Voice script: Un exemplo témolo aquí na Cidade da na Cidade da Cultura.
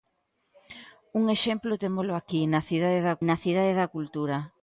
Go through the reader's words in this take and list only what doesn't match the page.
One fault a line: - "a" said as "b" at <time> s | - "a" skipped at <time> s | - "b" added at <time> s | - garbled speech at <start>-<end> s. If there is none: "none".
none